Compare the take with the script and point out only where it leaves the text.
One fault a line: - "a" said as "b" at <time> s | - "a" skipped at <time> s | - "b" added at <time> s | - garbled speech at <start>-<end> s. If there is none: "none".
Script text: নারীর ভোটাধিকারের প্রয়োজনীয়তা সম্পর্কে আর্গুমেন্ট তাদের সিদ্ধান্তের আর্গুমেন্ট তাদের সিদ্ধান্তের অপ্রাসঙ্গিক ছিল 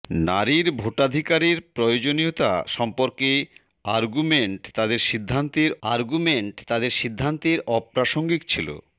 none